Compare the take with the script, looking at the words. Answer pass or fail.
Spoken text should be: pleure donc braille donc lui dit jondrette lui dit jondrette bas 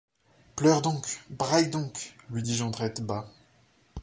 fail